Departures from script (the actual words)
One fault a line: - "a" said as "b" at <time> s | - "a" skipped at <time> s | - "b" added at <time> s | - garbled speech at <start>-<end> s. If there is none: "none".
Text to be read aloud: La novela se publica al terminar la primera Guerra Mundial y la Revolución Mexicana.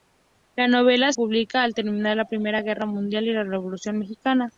- "se" skipped at 1.1 s